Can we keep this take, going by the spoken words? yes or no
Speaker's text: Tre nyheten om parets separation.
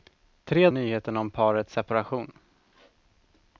yes